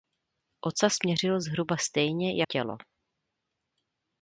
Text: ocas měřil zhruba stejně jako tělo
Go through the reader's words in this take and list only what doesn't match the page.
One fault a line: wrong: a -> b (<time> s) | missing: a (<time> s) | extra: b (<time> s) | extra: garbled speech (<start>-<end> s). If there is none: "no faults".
missing: jako (2.4 s)